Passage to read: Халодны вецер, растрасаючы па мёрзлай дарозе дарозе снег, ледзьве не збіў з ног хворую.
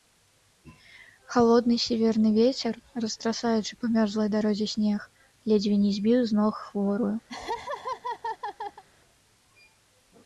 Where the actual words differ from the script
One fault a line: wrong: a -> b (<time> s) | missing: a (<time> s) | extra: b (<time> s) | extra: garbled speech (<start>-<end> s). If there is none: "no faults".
extra: сіверны (1.9 s)
missing: дарозе (4.7 s)